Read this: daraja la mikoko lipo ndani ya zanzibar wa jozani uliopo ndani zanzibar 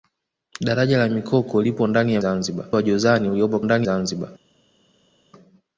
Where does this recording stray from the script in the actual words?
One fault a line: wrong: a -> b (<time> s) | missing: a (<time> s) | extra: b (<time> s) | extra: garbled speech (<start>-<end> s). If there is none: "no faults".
no faults